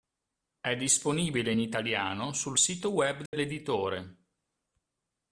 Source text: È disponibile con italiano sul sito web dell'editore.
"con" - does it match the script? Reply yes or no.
no